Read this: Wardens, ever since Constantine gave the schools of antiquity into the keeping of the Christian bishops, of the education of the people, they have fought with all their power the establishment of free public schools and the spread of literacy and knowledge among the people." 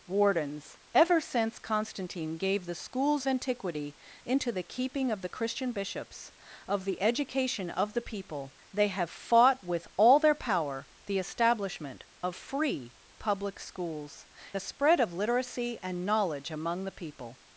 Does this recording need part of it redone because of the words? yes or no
yes